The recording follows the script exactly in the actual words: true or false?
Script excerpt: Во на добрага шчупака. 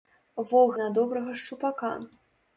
true